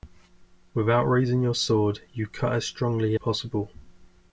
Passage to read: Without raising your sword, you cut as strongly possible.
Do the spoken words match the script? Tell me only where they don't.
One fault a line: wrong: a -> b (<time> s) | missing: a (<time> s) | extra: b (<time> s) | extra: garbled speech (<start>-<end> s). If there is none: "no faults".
no faults